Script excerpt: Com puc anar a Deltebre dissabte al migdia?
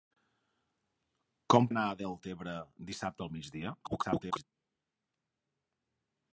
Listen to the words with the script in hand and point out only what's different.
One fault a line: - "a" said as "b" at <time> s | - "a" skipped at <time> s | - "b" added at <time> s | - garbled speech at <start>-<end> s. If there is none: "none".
- "puc" skipped at 1.7 s
- garbled speech at 3.8-4.4 s